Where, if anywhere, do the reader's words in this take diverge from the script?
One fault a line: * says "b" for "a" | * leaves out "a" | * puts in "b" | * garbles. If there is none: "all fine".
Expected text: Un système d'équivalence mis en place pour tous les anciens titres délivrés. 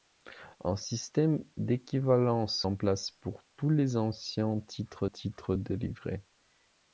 * leaves out "mis"
* puts in "titres"